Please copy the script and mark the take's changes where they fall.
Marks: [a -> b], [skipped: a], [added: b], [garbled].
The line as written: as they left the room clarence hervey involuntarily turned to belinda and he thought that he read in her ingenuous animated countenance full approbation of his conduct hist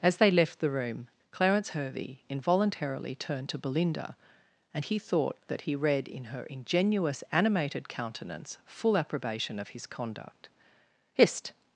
as they left the room clarence hervey involuntarily turned to belinda and he thought that he read in her ingenuous animated countenance full approbation of his conduct hist